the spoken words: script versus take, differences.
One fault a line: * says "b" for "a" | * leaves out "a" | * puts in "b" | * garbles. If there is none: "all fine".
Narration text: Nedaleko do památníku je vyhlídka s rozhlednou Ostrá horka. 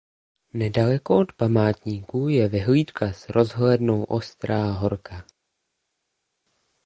* says "od" for "do"